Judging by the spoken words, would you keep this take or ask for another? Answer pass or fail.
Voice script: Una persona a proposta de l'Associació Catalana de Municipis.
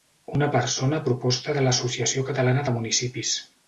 pass